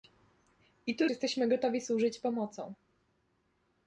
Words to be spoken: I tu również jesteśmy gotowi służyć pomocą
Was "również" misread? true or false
true